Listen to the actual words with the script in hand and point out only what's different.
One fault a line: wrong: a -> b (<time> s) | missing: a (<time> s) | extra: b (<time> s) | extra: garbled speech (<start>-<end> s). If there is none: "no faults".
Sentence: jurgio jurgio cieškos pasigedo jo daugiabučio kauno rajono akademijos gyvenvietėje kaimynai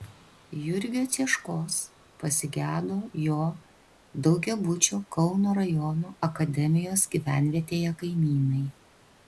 missing: jurgio (1.0 s)